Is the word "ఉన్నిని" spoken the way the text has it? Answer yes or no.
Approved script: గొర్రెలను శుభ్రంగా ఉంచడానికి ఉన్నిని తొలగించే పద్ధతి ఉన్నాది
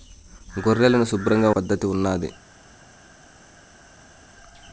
no